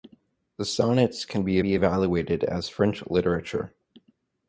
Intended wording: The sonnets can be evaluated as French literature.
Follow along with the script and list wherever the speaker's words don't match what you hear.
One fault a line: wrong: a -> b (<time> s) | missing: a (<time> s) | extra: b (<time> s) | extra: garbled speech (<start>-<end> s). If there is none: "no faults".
extra: be (1.6 s)